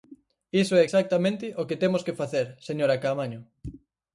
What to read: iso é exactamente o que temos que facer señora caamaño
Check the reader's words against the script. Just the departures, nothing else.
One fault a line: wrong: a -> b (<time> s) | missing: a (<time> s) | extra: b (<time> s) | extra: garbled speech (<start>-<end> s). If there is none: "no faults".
no faults